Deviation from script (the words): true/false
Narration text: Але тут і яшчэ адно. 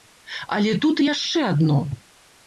false